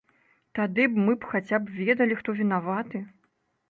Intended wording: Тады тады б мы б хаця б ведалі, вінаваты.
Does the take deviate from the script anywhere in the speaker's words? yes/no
yes